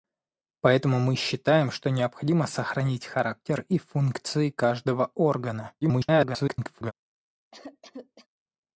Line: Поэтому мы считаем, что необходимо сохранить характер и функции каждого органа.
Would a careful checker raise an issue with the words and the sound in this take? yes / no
yes